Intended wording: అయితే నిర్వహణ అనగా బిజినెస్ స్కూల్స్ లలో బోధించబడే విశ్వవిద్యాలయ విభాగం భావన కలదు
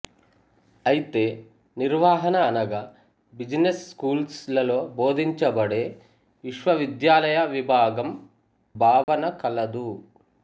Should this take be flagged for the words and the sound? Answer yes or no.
yes